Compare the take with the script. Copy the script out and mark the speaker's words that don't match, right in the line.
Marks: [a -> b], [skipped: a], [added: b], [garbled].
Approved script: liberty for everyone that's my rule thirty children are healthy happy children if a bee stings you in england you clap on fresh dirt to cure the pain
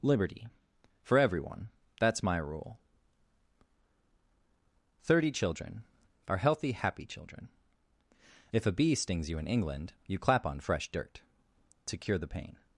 liberty for everyone that's my rule thirty children are healthy happy children if a bee stings you in england you clap on fresh dirt to cure the pain